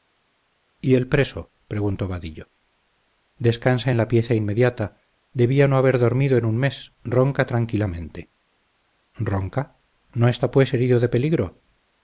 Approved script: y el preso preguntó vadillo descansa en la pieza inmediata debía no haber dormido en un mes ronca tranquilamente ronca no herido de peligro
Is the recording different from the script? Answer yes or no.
yes